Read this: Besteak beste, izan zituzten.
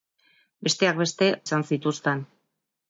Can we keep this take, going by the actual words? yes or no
yes